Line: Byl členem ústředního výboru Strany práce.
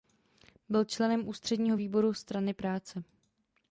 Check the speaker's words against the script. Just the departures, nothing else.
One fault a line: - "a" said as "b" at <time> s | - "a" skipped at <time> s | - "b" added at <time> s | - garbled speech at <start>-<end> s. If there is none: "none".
none